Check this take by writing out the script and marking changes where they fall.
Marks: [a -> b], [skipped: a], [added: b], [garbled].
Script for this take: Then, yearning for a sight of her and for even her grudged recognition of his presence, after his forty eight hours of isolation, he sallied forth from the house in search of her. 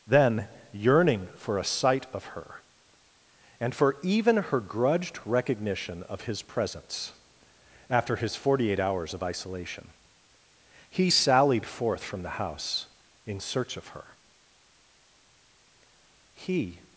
Then, yearning for a sight of her and for even her grudged recognition of his presence, after his forty eight hours of isolation, he sallied forth from the house in search of her. [added: He]